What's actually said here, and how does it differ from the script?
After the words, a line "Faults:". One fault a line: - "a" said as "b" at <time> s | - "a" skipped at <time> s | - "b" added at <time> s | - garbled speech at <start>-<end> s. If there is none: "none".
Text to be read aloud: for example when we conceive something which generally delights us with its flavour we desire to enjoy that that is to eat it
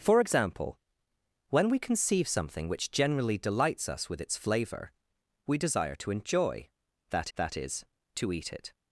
for example when we conceive something which generally delights us with its flavour we desire to enjoy that that is to eat it
Faults:
none